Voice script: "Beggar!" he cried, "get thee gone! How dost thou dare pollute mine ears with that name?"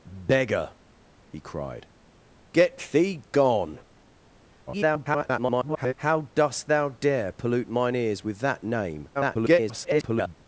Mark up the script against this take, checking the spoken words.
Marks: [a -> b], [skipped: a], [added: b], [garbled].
"Beggar!" he cried, "get thee gone! [garbled] How dost thou dare pollute mine ears with that name?" [garbled]